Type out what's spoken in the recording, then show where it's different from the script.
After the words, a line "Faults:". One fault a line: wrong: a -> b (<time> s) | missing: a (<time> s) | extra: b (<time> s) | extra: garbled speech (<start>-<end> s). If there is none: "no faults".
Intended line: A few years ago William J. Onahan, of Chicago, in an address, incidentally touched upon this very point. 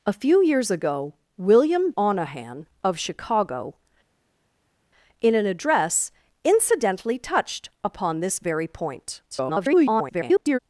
A few years ago William. Onahan, of Chicago, in an address, incidentally touched upon this very point. [garbled]
Faults:
missing: J (1.9 s)
extra: garbled speech (9.3-10.6 s)